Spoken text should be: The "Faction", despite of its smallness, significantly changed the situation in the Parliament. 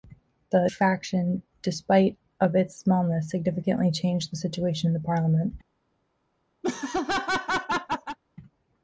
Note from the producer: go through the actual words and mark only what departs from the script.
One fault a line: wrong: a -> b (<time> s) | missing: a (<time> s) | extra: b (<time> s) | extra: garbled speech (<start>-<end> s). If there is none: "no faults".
no faults